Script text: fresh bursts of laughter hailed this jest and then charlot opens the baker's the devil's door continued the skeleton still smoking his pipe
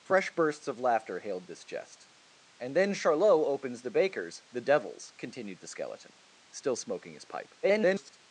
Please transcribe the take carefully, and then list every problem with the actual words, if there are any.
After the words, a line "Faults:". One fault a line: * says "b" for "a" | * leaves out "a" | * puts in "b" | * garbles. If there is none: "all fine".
fresh bursts of laughter hailed this jest and then charlot opens the baker's the devil's continued the skeleton still smoking his pipe [garbled]
Faults:
* leaves out "door"
* garbles